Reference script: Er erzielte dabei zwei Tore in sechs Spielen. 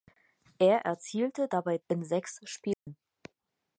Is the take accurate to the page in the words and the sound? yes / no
no